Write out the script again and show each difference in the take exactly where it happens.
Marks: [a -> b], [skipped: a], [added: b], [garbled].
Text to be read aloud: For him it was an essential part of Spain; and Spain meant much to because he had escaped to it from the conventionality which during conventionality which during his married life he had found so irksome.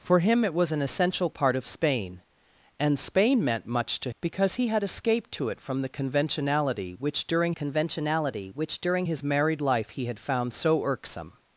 For him it was an essential part of Spain; and Spain meant much to because he had escaped to it from the conventionality which during conventionality which during his married life he had found so irksome.